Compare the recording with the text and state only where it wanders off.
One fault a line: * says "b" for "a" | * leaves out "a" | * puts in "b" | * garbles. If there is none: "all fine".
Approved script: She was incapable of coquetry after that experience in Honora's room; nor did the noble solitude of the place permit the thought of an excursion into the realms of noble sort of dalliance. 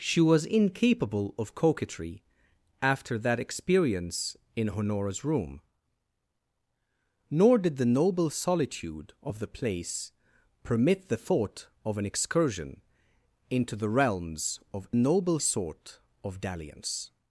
all fine